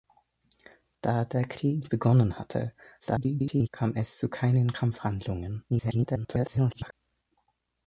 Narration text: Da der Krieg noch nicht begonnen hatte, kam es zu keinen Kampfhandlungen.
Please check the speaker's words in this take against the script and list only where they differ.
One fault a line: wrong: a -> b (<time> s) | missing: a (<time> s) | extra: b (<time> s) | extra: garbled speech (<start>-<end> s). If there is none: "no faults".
missing: noch nicht (1.9 s)
extra: garbled speech (3.0-3.7 s)
extra: garbled speech (5.7-6.9 s)